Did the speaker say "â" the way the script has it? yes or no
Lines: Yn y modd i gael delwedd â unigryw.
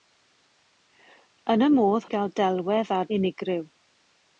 yes